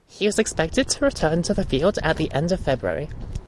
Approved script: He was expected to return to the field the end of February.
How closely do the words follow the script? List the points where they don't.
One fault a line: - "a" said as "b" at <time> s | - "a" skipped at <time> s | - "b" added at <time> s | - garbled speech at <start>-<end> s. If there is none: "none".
- "at" added at 2.0 s